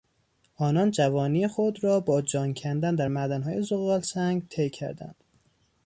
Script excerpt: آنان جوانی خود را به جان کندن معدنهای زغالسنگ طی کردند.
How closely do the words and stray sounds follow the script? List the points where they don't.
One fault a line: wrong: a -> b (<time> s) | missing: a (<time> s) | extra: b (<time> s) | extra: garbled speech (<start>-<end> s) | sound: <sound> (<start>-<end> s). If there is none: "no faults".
wrong: به -> با (2.0 s)
extra: در (3.0 s)